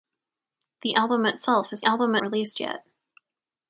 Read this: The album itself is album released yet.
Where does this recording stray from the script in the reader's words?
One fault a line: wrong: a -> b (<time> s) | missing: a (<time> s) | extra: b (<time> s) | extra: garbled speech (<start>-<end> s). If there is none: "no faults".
no faults